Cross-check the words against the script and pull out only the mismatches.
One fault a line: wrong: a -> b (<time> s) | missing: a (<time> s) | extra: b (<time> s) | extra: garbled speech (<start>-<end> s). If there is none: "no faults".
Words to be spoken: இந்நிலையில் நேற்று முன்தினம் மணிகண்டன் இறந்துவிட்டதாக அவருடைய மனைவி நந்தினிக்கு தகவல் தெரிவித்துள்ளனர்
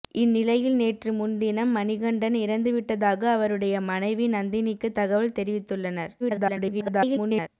extra: garbled speech (6.2-7.5 s)